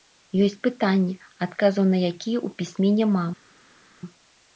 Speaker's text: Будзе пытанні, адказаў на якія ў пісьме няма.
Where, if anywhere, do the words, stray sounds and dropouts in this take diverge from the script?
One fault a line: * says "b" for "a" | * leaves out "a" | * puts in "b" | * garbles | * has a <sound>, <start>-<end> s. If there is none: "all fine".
* says "Ёсць" for "Будзе"